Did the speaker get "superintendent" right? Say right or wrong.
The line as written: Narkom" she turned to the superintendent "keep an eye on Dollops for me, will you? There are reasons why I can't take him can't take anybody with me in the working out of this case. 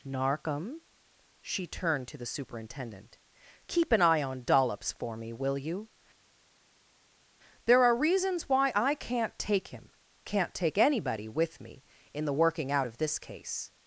right